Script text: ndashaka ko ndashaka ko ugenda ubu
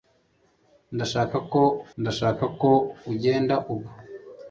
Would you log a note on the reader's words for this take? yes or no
no